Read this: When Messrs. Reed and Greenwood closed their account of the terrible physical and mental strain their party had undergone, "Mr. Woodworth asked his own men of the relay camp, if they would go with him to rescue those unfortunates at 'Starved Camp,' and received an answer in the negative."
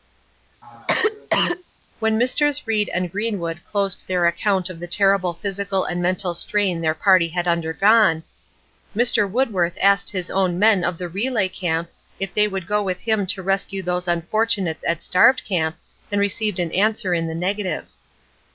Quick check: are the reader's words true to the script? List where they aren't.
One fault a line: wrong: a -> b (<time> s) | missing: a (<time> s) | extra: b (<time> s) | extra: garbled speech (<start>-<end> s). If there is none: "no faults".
no faults